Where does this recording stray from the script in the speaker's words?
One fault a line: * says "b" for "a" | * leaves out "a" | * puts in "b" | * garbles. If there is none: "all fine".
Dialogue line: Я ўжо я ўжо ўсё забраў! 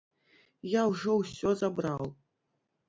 * leaves out "я ўжо"